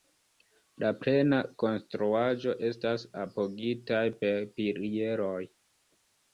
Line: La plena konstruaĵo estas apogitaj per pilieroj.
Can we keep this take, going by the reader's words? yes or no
yes